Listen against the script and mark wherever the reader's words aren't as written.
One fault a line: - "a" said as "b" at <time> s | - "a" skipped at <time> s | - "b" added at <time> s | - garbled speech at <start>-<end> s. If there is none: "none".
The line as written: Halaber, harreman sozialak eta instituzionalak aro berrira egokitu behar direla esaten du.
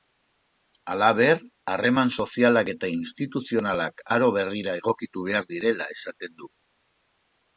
none